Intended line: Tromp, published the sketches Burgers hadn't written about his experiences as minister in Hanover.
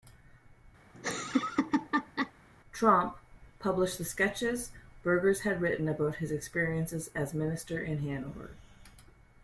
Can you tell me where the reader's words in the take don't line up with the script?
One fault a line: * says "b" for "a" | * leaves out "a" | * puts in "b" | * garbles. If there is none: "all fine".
* says "had" for "hadn't"